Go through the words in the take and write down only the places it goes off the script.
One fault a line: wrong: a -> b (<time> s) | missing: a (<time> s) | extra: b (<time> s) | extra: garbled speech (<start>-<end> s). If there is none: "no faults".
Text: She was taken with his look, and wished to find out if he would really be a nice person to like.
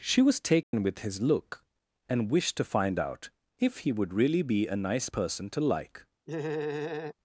no faults